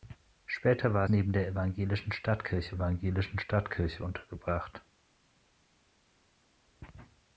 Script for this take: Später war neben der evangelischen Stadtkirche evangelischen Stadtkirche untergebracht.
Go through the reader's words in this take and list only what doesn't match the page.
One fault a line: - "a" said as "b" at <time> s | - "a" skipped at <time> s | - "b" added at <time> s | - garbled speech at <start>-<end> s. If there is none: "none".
none